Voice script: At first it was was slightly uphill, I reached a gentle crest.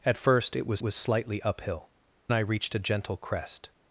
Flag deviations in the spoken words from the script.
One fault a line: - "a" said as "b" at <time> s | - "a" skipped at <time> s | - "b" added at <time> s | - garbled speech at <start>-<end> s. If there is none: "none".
none